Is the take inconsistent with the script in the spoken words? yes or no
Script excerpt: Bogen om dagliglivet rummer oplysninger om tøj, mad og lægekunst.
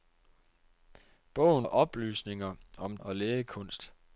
yes